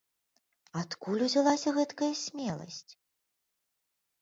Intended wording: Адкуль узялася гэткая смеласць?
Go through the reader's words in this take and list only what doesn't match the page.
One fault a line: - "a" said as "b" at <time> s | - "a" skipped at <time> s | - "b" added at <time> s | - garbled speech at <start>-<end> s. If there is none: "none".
none